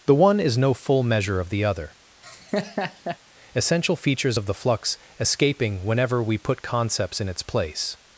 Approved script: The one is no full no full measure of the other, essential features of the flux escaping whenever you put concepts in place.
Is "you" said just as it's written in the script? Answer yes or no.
no